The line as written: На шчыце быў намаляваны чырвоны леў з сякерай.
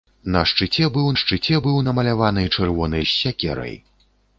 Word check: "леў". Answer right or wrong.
wrong